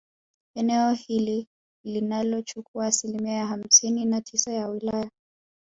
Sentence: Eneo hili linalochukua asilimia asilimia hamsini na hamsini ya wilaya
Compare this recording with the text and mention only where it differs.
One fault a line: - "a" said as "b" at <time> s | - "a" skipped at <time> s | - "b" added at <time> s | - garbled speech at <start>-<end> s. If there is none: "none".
- "asilimia" skipped at 3.5 s
- "hamsini" said as "tisa" at 4.2 s